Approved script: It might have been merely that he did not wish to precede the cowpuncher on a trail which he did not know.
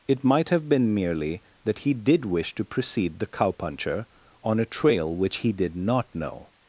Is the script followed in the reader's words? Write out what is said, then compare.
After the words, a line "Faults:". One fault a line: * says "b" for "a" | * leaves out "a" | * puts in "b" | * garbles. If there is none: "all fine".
It might have been merely that he did wish to precede the cowpuncher on a trail which he did not know.
Faults:
* leaves out "not"